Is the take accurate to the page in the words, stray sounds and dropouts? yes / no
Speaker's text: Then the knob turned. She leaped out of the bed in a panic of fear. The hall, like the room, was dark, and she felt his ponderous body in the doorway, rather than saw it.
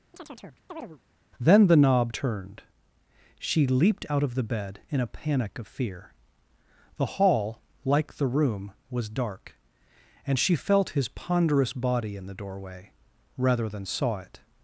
no